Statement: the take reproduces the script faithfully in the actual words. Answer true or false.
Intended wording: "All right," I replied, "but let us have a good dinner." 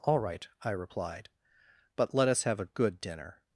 true